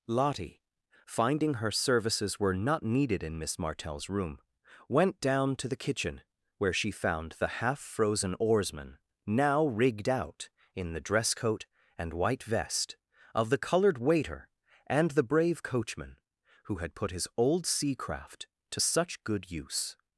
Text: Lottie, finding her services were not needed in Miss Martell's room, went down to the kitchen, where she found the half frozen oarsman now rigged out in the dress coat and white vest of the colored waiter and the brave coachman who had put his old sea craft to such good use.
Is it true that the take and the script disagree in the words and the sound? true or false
false